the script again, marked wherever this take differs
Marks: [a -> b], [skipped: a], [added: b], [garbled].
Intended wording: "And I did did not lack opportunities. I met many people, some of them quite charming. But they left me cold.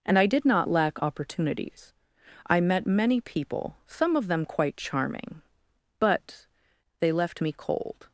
"And I did [skipped: did] not lack opportunities. I met many people, some of them quite charming. But they left me cold.